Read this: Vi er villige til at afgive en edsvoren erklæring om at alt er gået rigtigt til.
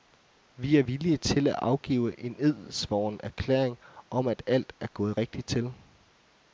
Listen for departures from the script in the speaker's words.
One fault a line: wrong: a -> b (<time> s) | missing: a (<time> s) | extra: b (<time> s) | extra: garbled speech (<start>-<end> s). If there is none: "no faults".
no faults